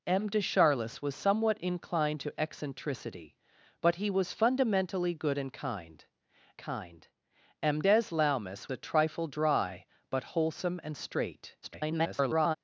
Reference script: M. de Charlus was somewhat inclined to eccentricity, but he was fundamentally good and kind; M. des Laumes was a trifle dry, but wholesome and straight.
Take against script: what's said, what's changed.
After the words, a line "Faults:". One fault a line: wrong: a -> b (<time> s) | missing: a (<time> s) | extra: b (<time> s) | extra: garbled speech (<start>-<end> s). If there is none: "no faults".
M. de Charlus was somewhat inclined to eccentricity, but he was fundamentally good and kind kind; M. des Laumes a trifle dry, but wholesome and straight. [garbled]
Faults:
extra: kind (6.6 s)
missing: was (8.7 s)
extra: garbled speech (11.6-12.6 s)